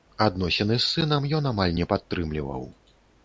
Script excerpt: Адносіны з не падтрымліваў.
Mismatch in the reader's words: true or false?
true